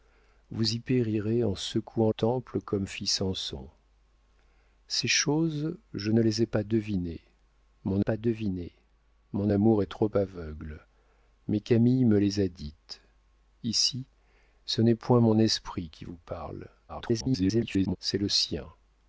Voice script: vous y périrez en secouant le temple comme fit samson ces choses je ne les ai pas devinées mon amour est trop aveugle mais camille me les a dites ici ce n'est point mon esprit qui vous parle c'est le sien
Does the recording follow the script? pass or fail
fail